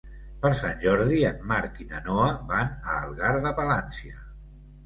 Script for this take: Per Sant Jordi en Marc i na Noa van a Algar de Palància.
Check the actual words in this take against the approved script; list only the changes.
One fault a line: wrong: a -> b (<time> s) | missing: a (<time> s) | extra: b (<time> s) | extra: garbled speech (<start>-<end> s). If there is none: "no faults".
no faults